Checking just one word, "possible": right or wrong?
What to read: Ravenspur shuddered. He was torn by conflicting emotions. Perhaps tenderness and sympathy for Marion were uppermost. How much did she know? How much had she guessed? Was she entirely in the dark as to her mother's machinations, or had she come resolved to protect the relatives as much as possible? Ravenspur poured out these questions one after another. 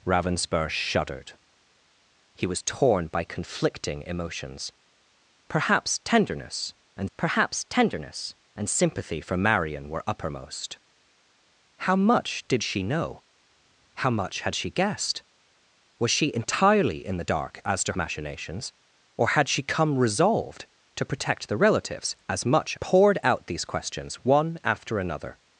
wrong